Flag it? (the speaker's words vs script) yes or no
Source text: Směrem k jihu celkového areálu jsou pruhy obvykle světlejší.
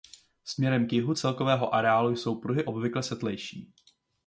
no